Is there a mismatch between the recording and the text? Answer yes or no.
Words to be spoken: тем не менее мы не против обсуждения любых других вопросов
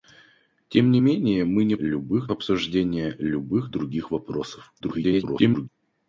yes